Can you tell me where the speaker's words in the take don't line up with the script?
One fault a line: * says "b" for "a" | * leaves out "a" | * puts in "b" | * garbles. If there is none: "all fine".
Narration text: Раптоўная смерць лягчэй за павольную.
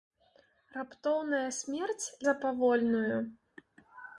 * leaves out "лягчэй"